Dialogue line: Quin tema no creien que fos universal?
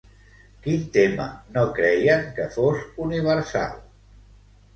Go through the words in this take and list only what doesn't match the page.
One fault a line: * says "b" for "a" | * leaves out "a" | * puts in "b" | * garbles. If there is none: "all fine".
all fine